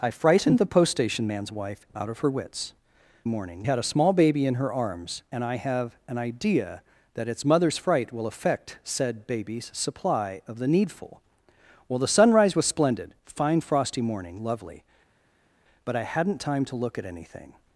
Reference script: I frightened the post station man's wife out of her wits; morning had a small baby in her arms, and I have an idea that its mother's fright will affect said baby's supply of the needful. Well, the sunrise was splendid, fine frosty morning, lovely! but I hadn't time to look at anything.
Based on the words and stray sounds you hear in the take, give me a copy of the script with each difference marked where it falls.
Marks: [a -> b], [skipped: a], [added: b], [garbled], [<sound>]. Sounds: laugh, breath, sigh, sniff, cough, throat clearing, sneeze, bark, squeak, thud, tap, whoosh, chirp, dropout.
I frightened the post station man's wife out of her wits; morning had a small baby in her arms, and I have an idea that its mother's fright will affect said baby's supply of the needful. Well, the sunrise was splendid, fine frosty morning, lovely! but I hadn't time to look at anything.